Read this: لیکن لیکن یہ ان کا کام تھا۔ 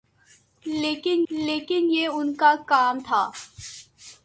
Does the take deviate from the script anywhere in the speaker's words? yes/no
no